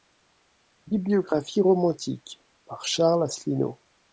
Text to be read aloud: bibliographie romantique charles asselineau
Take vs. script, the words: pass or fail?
fail